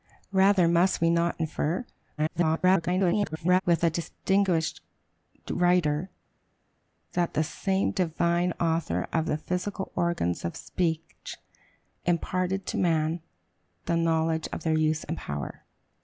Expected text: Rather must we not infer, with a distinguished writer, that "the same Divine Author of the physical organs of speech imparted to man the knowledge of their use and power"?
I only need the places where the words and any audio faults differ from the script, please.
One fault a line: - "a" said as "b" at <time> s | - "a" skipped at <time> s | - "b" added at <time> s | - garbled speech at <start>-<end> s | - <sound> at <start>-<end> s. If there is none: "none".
- garbled speech at 2.2-3.6 s